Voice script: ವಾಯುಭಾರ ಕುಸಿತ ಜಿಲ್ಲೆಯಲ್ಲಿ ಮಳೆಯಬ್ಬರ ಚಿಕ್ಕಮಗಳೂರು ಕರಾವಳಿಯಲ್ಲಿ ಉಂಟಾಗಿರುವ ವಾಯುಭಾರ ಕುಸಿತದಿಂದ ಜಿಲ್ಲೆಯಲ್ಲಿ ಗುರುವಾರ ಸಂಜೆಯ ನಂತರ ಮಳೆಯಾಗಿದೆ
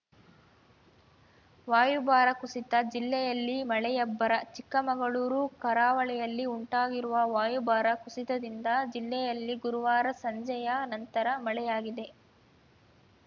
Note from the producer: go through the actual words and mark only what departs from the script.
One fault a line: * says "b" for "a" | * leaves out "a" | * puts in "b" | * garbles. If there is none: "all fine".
all fine